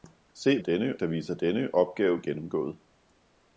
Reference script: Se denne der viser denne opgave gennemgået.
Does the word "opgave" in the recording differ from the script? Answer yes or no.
no